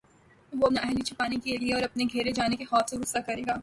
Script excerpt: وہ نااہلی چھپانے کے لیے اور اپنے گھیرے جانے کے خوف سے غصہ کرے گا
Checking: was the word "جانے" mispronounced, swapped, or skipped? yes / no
no